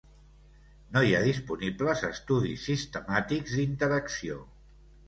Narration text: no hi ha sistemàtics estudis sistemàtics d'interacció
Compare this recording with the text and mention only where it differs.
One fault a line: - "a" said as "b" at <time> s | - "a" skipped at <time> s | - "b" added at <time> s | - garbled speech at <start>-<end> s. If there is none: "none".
- "sistemàtics" said as "disponibles" at 1.3 s